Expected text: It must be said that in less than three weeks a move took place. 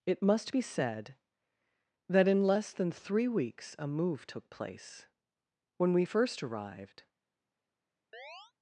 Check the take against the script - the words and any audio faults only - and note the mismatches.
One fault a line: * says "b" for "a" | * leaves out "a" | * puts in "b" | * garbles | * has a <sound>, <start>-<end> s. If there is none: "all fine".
* puts in "When we first arrived"
* has a chirp, 8.1-8.5 s